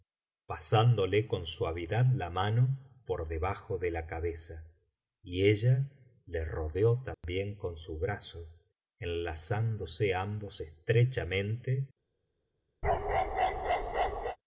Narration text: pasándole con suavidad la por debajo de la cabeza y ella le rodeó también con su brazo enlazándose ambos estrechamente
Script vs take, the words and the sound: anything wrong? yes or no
yes